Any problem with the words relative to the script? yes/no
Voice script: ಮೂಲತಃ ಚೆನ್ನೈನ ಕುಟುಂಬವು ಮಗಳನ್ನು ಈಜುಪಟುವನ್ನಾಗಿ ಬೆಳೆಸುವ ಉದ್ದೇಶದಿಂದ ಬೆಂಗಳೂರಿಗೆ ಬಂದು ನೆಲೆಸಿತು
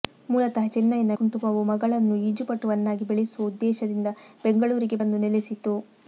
no